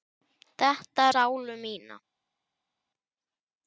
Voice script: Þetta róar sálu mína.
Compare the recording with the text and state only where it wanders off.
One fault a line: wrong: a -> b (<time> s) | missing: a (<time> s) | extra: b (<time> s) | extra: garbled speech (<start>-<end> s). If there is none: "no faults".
missing: róar (1.1 s)